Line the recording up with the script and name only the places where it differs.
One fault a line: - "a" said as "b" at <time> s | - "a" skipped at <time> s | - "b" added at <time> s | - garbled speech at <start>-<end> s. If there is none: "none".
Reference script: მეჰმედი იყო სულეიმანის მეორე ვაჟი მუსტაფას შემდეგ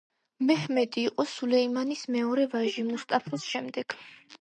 none